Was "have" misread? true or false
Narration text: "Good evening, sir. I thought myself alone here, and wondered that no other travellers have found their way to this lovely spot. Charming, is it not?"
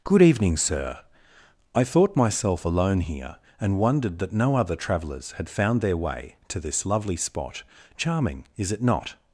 true